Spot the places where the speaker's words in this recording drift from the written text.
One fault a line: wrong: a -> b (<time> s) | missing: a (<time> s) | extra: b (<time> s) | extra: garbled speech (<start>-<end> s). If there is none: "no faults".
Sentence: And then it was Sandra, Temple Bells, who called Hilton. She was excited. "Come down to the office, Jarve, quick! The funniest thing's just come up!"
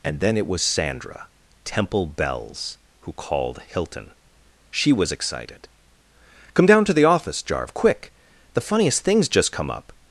no faults